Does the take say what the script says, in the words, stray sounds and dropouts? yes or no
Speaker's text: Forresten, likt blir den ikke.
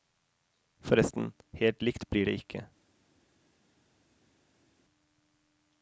no